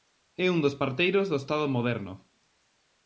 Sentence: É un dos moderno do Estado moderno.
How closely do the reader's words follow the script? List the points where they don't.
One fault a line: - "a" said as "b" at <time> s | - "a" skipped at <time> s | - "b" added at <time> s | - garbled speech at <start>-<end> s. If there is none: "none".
- "moderno" said as "parteiros" at 0.8 s